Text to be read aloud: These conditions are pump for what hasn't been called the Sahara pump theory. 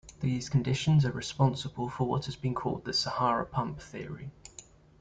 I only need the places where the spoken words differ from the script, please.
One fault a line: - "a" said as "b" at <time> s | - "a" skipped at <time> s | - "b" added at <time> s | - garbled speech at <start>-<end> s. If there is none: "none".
- "pump" said as "responsible" at 1.1 s
- "hasn't" said as "has" at 2.2 s